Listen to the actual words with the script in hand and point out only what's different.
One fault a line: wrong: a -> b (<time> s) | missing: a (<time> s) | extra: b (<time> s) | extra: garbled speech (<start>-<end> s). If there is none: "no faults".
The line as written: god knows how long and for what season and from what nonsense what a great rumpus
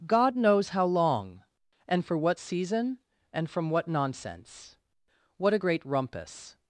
no faults